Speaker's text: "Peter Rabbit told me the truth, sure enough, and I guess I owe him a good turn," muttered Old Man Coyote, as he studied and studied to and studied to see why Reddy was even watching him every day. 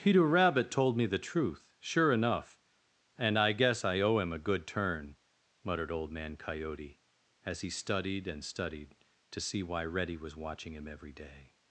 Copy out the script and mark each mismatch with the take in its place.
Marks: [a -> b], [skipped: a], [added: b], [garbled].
"Peter Rabbit told me the truth, sure enough, and I guess I owe him a good turn," muttered Old Man Coyote, as he studied and studied to [skipped: and studied to] see why Reddy was [skipped: even] watching him every day.